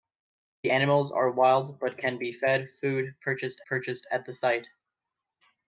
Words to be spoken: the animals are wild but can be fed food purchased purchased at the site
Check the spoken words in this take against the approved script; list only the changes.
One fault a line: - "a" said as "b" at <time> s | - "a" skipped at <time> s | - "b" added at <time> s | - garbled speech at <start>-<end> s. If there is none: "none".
none